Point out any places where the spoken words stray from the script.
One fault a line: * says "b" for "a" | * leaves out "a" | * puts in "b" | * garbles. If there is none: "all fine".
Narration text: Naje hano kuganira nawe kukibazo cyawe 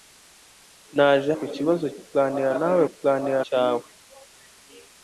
* says "kukibazo" for "hano"
* says "kuganira" for "kukibazo"